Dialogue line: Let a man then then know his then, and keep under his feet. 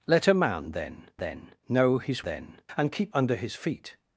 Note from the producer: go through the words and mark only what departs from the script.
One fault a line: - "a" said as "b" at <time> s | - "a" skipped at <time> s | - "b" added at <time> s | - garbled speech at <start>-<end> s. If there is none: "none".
none